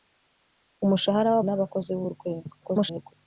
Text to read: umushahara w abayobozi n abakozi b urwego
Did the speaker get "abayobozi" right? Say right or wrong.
wrong